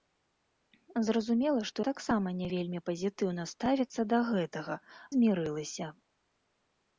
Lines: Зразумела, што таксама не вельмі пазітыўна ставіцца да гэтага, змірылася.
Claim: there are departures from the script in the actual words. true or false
false